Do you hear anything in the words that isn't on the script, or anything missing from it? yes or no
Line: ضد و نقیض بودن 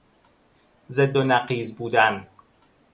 no